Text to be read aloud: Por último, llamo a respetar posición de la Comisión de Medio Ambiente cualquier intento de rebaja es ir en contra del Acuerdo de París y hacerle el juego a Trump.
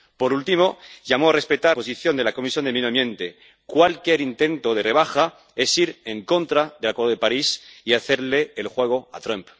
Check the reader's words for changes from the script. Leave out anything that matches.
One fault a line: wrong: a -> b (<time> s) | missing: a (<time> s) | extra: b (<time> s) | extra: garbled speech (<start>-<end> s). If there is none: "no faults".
no faults